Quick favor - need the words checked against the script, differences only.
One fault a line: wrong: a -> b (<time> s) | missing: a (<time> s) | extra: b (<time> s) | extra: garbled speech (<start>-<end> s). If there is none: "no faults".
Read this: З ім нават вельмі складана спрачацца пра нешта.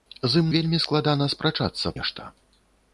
missing: нават (0.5 s)
missing: пра (2.0 s)